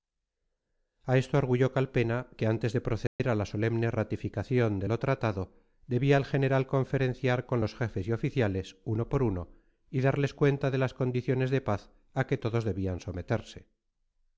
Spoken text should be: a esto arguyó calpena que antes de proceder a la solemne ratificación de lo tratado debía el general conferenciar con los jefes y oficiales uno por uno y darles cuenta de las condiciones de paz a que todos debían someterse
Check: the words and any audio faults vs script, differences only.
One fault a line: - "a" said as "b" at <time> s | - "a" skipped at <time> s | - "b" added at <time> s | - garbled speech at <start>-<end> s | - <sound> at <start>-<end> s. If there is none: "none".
- dropout at 3.1-3.2 s